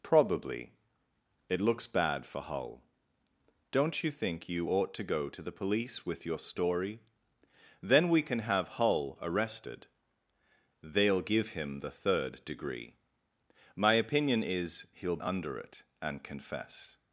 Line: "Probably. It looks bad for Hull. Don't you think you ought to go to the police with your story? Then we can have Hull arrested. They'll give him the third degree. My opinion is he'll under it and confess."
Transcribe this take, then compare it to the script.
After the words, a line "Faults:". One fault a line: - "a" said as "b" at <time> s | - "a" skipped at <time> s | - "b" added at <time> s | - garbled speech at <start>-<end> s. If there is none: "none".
"Probably. It looks bad for Hull. Don't you think you ought to go to the police with your story? Then we can have Hull arrested. They'll give him the third degree. My opinion is he'll under it and confess."
Faults:
none